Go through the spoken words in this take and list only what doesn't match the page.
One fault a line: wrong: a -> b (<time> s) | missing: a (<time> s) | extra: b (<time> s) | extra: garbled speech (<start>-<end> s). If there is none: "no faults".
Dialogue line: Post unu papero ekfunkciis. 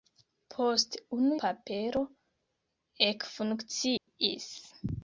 no faults